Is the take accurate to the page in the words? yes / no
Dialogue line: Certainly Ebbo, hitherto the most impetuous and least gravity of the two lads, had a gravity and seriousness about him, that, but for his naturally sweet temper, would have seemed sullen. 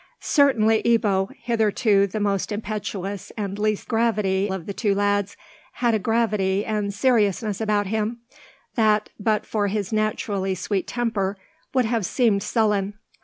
yes